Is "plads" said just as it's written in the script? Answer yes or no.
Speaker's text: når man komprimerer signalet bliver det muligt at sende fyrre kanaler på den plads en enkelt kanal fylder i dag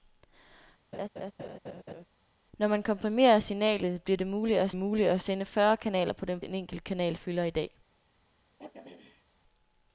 no